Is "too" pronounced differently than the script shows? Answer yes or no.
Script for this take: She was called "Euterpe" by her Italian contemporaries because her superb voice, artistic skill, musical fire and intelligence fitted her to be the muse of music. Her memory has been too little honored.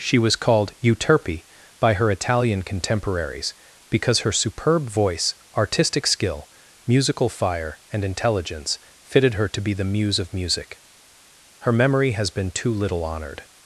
no